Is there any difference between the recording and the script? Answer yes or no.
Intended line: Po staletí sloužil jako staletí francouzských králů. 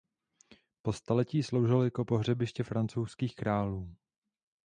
yes